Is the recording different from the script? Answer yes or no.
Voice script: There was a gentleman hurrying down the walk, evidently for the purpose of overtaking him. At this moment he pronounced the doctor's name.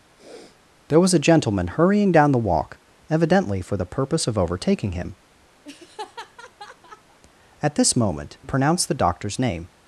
yes